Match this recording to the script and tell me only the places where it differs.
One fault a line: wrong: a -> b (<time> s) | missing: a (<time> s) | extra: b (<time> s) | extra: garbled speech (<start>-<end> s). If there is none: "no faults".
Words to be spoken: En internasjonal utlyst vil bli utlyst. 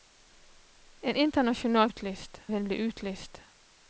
no faults